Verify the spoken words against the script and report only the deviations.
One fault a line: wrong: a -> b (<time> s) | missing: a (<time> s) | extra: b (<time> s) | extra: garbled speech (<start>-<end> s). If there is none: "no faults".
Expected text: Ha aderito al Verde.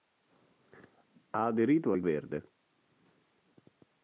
no faults